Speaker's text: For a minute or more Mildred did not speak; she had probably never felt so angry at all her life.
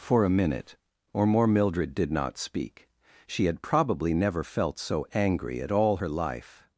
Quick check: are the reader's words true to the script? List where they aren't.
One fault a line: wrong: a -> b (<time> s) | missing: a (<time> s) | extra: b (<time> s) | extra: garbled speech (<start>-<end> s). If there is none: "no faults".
no faults